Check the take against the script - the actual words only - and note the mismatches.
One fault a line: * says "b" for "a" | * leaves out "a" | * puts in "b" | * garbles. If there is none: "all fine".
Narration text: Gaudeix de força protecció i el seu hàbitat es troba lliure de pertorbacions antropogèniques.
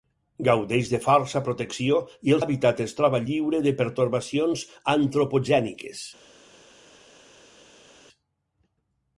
* leaves out "seu"